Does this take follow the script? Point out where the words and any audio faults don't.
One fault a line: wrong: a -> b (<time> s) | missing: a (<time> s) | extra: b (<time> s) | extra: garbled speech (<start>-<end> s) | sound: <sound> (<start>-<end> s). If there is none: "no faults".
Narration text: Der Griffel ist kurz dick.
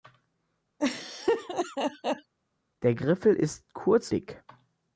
sound: laugh (0.8-2.3 s)